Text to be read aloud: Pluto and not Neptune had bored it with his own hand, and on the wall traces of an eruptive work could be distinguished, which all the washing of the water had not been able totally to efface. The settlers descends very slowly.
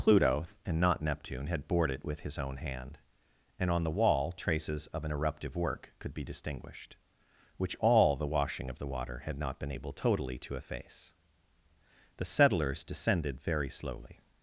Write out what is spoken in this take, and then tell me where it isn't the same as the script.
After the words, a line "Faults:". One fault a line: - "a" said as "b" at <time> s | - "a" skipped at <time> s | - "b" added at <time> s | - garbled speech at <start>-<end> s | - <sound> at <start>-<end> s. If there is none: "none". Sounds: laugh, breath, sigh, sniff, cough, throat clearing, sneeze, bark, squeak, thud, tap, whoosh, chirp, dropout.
Pluto and not Neptune had bored it with his own hand, and on the wall traces of an eruptive work could be distinguished, which all the washing of the water had not been able totally to efface. The settlers descended very slowly.
Faults:
- "descends" said as "descended" at 12.8 s